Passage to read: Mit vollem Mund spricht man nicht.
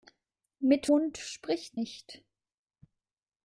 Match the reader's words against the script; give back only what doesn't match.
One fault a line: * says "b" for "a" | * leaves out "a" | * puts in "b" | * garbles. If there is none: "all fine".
* leaves out "vollem"
* leaves out "man"